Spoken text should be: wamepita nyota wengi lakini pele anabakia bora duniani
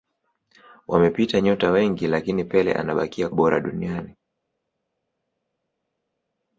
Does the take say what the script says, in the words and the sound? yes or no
yes